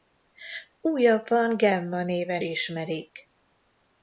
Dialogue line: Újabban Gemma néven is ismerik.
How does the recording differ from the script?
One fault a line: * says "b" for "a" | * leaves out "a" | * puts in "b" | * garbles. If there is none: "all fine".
* leaves out "is"